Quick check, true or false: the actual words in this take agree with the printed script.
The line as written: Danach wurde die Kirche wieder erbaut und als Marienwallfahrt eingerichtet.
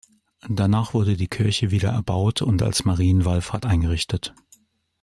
true